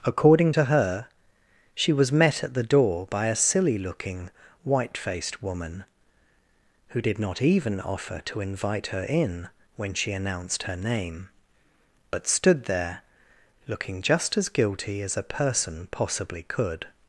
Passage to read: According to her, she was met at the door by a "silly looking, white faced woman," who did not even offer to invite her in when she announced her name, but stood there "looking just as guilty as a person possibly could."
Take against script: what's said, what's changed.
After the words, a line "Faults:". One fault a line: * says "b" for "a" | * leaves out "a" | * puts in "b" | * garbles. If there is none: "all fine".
According to her, she was met at the door by a "silly looking, white faced woman," who did not even offer to invite her in when she announced her name, but stood there "looking just as guilty as a person possibly could."
Faults:
all fine